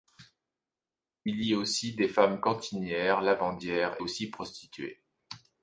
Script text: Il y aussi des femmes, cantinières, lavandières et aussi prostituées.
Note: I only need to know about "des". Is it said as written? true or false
true